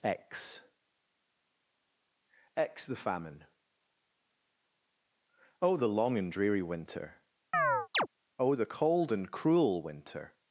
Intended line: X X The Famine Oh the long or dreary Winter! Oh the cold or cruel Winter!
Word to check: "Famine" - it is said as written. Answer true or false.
true